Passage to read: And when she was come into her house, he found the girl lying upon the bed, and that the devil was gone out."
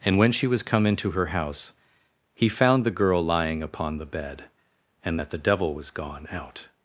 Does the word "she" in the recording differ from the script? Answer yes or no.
no